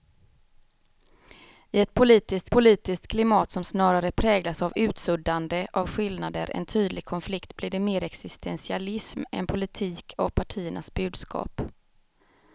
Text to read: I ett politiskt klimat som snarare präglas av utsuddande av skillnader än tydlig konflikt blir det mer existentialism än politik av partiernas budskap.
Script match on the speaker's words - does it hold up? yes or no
no